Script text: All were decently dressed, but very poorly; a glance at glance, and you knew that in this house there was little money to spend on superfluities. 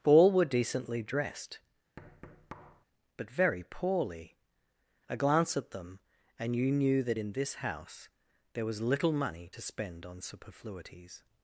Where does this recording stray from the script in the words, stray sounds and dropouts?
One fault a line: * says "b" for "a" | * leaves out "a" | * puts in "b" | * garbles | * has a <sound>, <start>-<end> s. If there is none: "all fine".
* has a thud, 2.0-2.9 s
* says "them" for "glance"